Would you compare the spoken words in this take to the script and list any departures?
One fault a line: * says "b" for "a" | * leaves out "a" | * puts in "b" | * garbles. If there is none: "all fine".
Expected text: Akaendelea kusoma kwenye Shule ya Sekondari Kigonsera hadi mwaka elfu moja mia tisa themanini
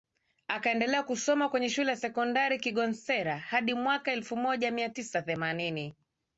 all fine